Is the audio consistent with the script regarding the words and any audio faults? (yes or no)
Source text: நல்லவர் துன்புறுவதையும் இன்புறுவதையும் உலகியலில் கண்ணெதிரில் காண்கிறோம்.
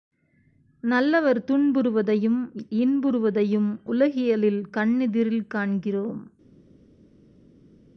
yes